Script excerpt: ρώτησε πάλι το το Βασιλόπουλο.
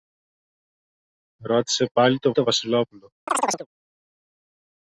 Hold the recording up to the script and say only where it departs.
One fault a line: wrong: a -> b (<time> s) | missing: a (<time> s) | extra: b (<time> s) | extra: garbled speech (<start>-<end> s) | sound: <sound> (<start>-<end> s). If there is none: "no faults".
sound: chirp (3.3-3.7 s)